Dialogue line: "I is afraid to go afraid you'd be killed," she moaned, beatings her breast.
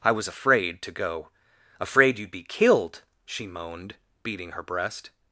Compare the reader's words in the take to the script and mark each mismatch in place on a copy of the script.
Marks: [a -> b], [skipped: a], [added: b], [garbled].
"I [is -> was] afraid to go afraid you'd be killed," she moaned, [beatings -> beating] her breast.